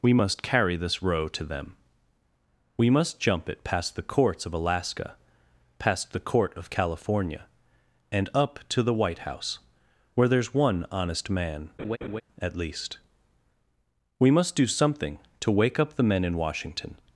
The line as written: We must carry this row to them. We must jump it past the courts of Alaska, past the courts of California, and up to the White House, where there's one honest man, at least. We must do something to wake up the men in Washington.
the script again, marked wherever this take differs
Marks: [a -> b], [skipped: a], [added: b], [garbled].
We must carry this row to them. We must jump it past the courts of Alaska, past the [courts -> court] of California, and up to the White House, where there's one honest man, at least. We must do something to wake up the men in Washington.